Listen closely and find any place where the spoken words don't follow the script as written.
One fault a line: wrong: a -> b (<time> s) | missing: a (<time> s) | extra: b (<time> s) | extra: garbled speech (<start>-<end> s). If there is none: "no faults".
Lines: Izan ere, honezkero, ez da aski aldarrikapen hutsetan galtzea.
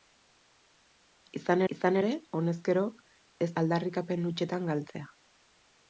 extra: izan (1.7 s)
missing: da aski (3.5 s)